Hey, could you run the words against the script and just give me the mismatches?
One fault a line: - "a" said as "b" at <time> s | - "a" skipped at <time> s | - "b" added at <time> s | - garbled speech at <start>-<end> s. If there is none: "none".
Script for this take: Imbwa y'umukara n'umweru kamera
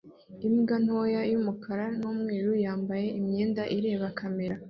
- "ntoya" added at 0.8 s
- "yambaye imyenda ireba" added at 2.6 s